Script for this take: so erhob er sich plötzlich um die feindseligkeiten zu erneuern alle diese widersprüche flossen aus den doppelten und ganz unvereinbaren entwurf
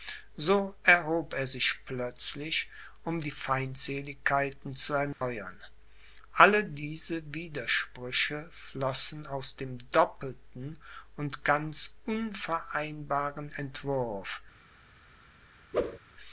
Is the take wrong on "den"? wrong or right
wrong